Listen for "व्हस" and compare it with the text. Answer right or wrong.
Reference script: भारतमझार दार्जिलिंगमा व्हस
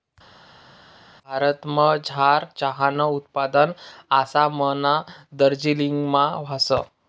right